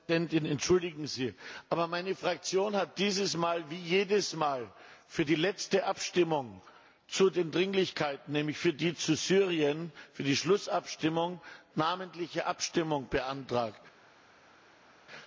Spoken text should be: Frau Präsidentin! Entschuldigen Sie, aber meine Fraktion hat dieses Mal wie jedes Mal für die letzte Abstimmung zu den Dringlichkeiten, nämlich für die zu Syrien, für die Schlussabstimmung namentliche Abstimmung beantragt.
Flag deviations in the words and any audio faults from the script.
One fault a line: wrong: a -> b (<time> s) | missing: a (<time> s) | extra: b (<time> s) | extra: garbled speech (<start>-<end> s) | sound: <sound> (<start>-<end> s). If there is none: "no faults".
no faults